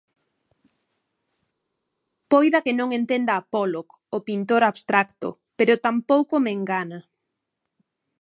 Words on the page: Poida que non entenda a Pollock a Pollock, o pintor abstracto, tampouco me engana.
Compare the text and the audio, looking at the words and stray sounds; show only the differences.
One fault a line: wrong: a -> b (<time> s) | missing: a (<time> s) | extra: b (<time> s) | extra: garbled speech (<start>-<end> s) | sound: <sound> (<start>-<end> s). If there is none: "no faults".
missing: a Pollock (3.9 s)
extra: pero (5.6 s)